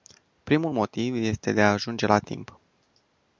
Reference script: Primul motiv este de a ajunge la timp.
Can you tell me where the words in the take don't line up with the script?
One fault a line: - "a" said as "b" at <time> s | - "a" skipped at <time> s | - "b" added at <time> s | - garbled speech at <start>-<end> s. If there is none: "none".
none